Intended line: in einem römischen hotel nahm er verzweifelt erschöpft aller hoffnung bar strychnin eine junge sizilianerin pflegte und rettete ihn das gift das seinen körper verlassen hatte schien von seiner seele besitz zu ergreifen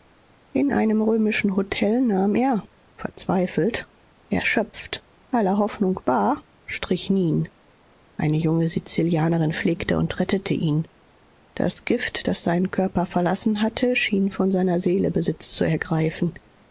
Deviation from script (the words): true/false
false